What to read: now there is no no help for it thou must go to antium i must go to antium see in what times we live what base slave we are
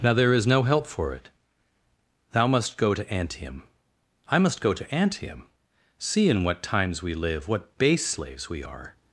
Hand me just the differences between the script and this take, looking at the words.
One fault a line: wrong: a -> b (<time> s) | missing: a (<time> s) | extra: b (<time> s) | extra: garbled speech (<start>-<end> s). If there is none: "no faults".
missing: no (0.6 s)
wrong: slave -> slaves (8.1 s)